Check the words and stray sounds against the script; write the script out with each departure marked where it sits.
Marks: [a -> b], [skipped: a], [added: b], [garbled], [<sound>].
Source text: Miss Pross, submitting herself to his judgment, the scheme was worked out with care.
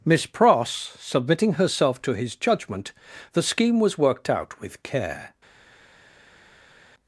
Miss Pross, submitting herself to his judgment, the scheme was worked out with care.